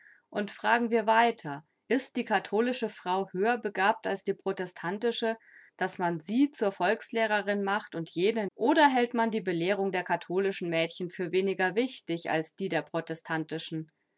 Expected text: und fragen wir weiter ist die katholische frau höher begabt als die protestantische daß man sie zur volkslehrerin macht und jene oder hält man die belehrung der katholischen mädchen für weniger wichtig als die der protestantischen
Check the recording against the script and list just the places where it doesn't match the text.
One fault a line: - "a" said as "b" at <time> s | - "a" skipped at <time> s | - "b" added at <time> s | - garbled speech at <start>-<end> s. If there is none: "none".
none